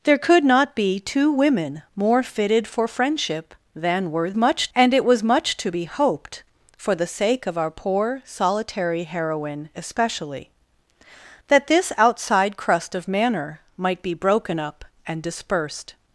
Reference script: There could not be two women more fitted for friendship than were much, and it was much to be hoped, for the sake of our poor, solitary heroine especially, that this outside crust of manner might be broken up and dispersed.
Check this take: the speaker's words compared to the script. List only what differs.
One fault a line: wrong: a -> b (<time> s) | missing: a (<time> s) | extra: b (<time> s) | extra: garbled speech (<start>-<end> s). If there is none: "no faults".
no faults